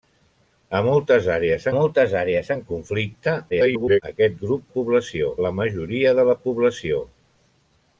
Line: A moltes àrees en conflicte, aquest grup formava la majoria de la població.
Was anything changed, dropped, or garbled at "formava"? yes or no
yes